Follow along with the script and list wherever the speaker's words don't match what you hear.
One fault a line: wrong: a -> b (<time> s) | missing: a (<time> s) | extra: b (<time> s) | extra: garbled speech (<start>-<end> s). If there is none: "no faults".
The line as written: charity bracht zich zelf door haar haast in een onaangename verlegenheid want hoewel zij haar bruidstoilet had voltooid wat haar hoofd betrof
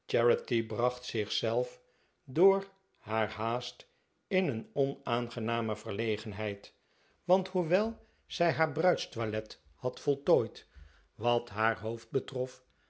no faults